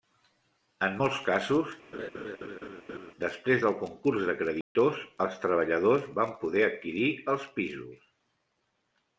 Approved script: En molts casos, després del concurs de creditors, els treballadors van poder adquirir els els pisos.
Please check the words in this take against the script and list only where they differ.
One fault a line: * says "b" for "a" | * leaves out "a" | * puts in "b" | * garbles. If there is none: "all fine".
* leaves out "els"